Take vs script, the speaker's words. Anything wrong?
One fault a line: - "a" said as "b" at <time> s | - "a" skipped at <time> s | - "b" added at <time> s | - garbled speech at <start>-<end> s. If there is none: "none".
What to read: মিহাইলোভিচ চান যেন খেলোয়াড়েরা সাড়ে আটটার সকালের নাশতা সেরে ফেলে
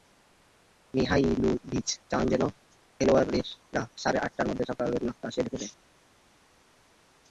- "মধ্যে" added at 4.5 s